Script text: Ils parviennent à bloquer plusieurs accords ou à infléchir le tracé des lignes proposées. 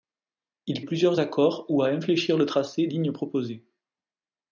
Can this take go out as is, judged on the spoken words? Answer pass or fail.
fail